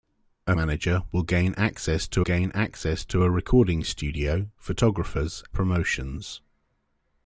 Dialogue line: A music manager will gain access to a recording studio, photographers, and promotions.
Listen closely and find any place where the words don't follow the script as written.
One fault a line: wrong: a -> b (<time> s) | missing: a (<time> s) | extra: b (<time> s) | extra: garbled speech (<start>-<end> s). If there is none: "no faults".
missing: music (0.6 s)
extra: gain access to (2.2 s)
missing: and (5.4 s)